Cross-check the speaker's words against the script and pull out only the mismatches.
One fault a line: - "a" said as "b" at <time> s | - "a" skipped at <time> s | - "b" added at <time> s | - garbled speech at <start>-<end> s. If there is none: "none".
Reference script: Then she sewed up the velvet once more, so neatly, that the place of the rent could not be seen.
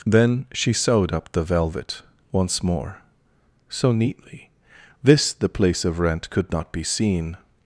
- "that" said as "this" at 5.0 s
- "the" skipped at 6.0 s